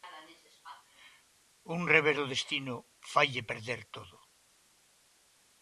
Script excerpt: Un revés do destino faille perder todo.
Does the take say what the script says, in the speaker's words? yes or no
yes